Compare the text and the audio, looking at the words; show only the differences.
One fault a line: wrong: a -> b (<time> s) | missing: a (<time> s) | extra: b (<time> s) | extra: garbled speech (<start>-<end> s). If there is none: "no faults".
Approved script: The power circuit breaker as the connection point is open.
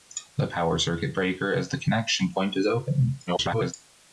extra: garbled speech (3.3-3.7 s)